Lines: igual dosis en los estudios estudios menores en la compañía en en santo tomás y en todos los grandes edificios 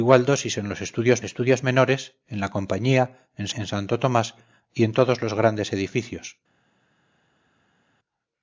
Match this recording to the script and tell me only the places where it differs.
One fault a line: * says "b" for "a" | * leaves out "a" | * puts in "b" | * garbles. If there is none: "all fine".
all fine